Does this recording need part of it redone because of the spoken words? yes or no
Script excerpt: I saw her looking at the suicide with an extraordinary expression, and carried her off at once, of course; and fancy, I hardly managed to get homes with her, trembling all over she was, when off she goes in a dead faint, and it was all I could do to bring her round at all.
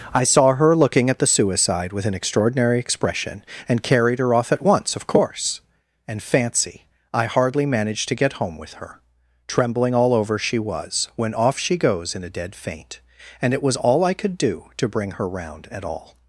yes